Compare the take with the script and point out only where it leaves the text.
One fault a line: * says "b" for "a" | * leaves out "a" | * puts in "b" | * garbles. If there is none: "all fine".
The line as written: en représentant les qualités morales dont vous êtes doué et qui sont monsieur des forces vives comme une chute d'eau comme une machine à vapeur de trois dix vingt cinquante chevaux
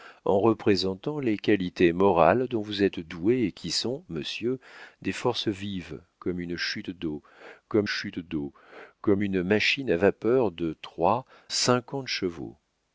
* puts in "chute d'eau comme"
* leaves out "dix vingt"